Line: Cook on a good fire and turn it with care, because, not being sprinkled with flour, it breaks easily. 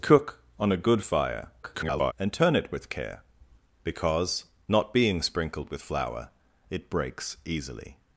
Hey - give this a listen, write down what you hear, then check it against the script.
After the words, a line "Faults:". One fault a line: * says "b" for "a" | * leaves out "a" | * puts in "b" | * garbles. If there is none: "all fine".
Cook on a good fire [garbled] and turn it with care, because, not being sprinkled with flour, it breaks easily.
Faults:
* garbles